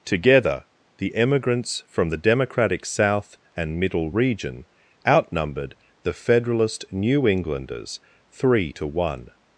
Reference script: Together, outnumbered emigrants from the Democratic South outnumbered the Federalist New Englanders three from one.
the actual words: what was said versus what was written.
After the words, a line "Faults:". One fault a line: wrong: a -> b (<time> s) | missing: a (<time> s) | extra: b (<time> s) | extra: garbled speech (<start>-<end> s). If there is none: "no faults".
Together, the emigrants from the Democratic South and Middle Region outnumbered the Federalist New Englanders three to one.
Faults:
wrong: outnumbered -> the (1.0 s)
extra: and Middle Region (3.5 s)
wrong: from -> to (8.7 s)